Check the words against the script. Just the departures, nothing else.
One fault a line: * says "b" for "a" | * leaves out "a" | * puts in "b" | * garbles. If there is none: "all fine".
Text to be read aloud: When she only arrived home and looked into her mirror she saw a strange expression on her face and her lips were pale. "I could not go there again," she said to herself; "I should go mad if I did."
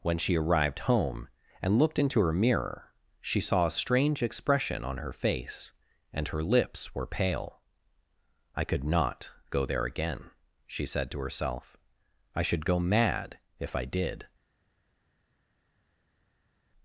* leaves out "only"